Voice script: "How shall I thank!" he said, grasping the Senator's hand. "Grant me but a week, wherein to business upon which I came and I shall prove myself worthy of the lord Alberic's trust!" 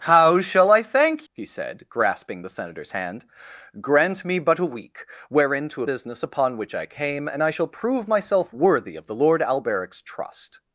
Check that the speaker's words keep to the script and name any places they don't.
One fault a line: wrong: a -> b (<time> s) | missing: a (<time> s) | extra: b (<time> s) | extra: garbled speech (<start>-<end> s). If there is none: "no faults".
no faults